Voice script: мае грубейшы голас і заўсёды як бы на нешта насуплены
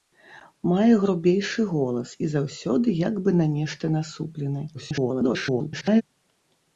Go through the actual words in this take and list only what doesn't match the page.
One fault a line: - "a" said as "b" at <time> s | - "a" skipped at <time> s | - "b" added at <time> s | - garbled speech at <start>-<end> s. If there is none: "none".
- garbled speech at 4.7-6.0 s